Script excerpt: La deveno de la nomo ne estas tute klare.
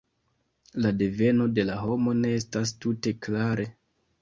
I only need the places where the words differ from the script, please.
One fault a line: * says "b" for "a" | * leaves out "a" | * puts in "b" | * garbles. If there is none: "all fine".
all fine